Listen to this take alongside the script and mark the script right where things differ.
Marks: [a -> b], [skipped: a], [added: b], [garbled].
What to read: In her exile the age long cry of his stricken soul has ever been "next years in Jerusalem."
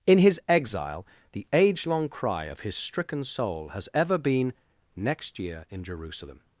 In [her -> his] exile the age long cry of his stricken soul has ever been "next [years -> year] in Jerusalem."